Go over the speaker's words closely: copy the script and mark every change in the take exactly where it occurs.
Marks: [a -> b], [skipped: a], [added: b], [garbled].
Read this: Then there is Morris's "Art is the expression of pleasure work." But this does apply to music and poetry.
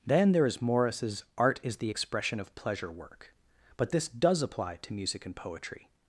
Then there is Morris's "Art is the expression of pleasure work." But this does apply to music and poetry.